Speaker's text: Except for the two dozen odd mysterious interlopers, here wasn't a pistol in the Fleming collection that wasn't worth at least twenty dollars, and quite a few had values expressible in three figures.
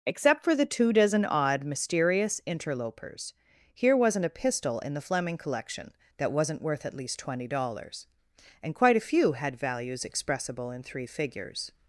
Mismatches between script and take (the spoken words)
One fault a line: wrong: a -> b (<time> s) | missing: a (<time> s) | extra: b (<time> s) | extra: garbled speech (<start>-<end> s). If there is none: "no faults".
no faults